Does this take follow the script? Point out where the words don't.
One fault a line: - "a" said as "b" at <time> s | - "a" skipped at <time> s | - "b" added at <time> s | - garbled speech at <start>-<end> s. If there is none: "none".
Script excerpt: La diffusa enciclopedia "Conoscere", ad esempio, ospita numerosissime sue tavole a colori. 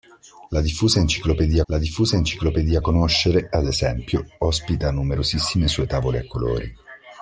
- "la diffusa enciclopedia" added at 1.7 s